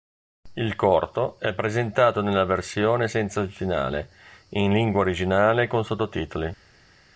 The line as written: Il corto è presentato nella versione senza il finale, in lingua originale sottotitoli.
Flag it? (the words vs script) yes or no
yes